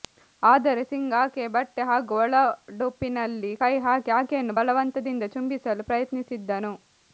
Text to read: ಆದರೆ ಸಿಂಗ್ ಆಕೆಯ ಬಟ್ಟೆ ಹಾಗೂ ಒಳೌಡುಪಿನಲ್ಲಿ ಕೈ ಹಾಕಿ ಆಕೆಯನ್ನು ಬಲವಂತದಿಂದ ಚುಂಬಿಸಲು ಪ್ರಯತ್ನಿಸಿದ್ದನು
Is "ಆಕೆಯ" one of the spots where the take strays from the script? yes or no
no